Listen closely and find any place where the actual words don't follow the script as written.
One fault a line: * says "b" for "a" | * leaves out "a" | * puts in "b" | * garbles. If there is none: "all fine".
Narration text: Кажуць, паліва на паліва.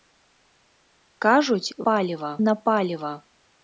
all fine